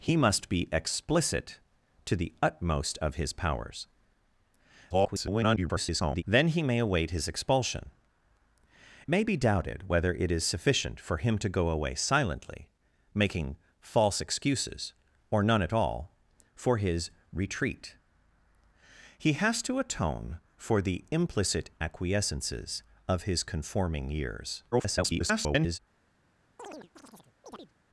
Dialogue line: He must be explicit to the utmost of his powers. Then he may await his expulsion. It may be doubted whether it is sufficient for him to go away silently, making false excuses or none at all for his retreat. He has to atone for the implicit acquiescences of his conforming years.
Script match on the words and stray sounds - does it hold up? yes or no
no